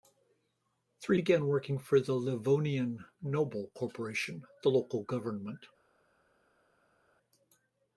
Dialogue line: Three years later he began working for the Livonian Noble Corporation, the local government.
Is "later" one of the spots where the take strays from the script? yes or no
yes